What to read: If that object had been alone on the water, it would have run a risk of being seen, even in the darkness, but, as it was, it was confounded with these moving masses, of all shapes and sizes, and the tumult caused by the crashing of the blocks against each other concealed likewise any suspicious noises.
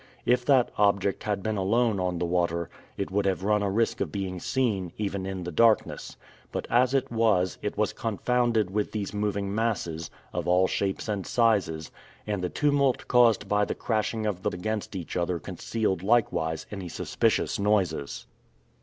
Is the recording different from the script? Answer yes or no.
yes